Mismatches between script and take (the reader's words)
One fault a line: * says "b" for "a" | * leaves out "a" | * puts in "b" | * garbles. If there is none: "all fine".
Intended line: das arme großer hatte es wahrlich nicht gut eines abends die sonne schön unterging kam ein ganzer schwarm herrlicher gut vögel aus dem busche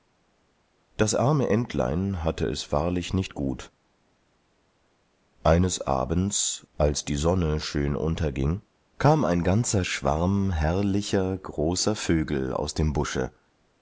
* says "entlein" for "großer"
* puts in "als"
* says "großer" for "gut"